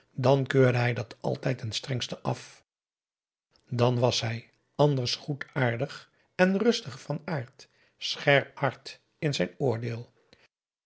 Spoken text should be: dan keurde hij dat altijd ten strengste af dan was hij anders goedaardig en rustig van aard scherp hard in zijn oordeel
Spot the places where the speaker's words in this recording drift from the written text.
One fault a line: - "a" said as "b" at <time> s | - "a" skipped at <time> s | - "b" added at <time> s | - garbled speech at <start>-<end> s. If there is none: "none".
none